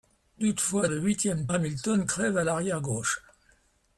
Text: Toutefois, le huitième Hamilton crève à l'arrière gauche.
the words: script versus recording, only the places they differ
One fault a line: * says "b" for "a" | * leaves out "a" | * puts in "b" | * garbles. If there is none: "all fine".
all fine